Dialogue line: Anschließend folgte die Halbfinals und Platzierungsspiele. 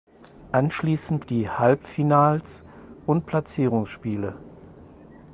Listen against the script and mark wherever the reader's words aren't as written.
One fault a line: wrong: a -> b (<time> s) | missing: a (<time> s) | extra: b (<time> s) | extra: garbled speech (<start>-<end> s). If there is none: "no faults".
missing: folgte (1.2 s)